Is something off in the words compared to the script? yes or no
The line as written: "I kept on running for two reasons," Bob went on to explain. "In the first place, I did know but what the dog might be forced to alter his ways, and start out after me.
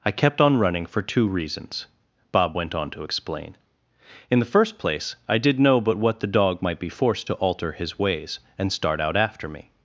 no